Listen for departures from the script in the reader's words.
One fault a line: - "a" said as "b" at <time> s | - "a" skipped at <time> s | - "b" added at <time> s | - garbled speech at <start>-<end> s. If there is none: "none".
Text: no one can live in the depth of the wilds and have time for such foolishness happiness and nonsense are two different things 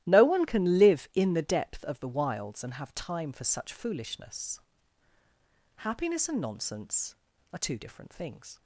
none